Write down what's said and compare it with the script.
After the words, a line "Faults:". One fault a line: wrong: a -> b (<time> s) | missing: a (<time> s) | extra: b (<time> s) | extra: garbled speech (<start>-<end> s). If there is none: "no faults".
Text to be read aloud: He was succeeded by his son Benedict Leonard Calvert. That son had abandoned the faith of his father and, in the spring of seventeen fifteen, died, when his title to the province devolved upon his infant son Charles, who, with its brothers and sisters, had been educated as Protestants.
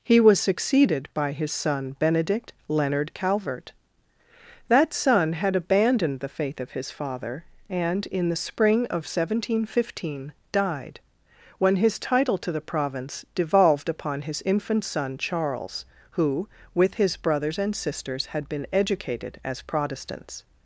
He was succeeded by his son Benedict Leonard Calvert. That son had abandoned the faith of his father and, in the spring of seventeen fifteen, died, when his title to the province devolved upon his infant son Charles, who, with his brothers and sisters, had been educated as Protestants.
Faults:
wrong: its -> his (16.9 s)